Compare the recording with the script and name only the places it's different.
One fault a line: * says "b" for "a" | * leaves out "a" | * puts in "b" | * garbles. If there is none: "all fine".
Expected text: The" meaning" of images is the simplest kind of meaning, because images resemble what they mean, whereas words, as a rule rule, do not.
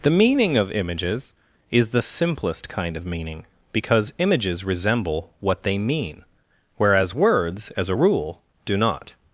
* leaves out "rule"